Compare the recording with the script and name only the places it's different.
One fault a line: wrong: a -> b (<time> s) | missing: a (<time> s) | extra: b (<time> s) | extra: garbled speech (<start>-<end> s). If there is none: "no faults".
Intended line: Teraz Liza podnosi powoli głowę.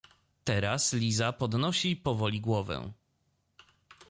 no faults